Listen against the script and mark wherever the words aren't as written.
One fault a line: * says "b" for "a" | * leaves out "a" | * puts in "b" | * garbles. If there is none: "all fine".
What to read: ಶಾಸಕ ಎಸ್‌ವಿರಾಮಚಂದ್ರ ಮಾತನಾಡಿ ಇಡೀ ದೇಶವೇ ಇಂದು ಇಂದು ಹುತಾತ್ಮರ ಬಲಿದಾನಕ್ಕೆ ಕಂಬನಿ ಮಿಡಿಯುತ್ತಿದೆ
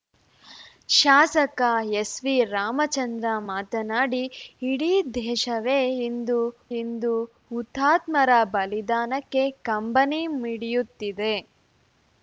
all fine